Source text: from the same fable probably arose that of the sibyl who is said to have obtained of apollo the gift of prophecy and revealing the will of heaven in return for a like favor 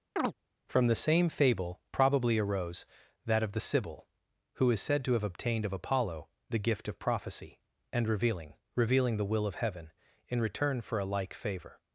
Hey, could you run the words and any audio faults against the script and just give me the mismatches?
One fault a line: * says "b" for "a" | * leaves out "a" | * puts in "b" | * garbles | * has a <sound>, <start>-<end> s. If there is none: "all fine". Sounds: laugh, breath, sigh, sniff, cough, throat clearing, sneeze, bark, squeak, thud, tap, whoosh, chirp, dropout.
* has a chirp, 0.2-0.3 s
* puts in "revealing"